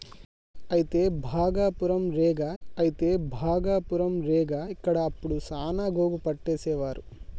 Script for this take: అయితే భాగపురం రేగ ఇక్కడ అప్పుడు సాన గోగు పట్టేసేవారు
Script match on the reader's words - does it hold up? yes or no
no